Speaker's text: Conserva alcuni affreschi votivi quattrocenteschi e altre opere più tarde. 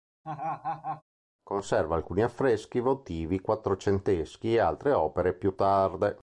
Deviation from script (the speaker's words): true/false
false